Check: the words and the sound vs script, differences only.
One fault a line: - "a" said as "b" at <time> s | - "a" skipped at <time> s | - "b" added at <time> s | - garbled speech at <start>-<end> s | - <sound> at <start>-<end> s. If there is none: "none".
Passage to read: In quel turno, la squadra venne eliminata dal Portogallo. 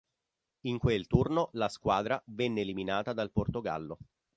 none